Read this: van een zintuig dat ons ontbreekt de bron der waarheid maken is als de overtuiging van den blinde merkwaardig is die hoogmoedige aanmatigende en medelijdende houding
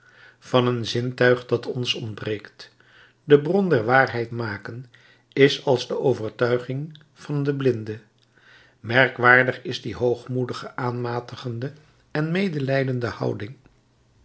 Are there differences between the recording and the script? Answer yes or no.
no